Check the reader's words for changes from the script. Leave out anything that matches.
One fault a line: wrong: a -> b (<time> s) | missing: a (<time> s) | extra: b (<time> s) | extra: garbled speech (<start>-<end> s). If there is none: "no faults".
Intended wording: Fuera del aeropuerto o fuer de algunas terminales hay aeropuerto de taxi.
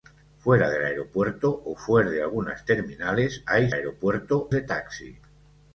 no faults